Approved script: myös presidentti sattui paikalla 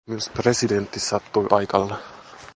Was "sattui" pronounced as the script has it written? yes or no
yes